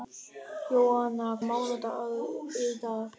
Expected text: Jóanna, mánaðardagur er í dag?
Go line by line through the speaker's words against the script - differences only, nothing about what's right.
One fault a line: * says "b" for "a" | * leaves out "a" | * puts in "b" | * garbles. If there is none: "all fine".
all fine